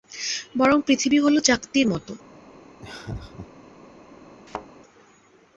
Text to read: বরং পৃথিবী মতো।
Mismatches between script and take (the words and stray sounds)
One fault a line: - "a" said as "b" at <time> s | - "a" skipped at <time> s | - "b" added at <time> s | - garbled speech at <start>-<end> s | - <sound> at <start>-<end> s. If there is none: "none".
- "হলো চাকতির" added at 1.2 s
- laugh at 2.8-3.5 s
- thud at 4.5-4.7 s